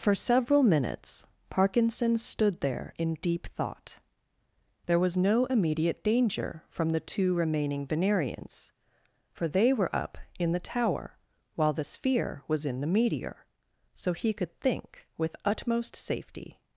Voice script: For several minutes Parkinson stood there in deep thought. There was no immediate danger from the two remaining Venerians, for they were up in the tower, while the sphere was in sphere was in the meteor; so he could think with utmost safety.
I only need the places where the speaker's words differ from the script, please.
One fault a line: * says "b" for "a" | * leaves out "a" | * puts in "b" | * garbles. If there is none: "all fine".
* leaves out "sphere was in"